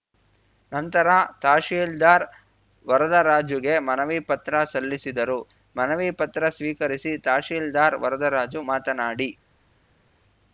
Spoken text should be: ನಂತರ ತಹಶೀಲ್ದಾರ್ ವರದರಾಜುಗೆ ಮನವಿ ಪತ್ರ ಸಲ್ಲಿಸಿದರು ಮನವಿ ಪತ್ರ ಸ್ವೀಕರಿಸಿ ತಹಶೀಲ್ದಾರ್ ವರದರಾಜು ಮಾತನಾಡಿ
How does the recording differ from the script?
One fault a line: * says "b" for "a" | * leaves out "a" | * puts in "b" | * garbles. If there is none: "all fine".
all fine